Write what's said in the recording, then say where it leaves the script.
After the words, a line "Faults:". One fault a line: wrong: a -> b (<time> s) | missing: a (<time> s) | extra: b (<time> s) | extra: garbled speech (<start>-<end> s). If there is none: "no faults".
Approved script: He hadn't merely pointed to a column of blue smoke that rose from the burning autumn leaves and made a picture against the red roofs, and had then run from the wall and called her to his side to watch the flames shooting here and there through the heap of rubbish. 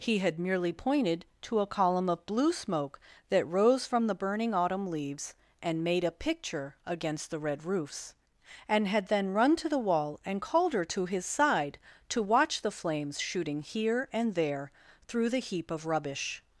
He had merely pointed to a column of blue smoke that rose from the burning autumn leaves and made a picture against the red roofs, and had then run to the wall and called her to his side to watch the flames shooting here and there through the heap of rubbish.
Faults:
wrong: hadn't -> had (0.2 s)
wrong: from -> to (9.6 s)